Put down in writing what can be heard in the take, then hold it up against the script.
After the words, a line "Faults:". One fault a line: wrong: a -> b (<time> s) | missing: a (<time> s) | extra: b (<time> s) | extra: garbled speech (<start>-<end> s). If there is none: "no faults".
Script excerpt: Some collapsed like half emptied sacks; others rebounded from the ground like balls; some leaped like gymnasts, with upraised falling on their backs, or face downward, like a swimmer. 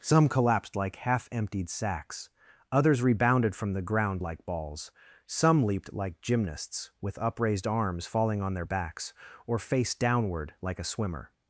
Some collapsed like half emptied sacks; others rebounded from the ground like balls; some leaped like gymnasts, with upraised arms, falling on their backs, or face downward, like a swimmer.
Faults:
extra: arms (7.7 s)